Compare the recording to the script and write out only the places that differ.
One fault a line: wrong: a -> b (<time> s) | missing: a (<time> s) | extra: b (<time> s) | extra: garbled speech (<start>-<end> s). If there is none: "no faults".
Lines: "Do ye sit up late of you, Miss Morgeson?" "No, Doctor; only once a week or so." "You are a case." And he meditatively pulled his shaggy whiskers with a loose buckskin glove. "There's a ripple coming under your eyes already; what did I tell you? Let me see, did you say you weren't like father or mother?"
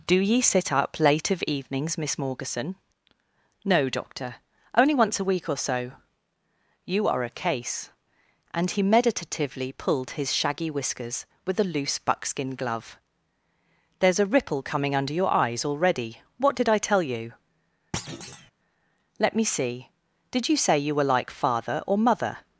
wrong: you -> evenings (1.4 s)
wrong: weren't -> were (20.9 s)